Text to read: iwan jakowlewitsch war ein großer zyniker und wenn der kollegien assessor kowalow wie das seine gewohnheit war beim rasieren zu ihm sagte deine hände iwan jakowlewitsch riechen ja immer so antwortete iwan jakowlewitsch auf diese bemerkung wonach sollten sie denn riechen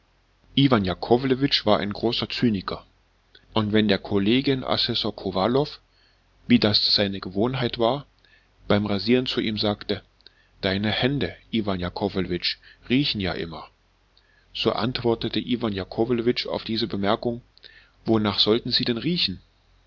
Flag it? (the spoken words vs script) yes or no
no